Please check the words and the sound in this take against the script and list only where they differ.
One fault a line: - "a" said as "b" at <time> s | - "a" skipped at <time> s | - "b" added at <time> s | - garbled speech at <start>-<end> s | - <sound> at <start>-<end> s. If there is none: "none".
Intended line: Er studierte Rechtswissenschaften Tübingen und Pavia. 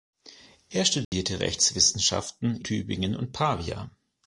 - dropout at 1.0-1.1 s